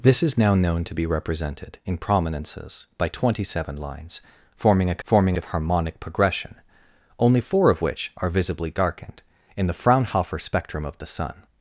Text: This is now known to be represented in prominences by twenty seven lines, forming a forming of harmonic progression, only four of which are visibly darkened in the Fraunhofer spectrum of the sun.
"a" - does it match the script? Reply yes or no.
yes